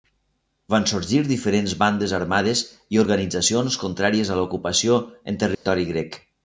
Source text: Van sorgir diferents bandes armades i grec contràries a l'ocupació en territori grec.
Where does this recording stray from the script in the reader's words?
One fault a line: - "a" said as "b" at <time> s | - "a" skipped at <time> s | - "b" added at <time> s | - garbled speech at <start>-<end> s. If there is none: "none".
- "grec" said as "organitzacions" at 3.0 s